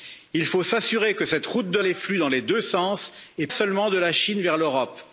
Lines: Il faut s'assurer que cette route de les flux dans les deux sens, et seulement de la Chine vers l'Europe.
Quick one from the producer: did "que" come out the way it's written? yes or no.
yes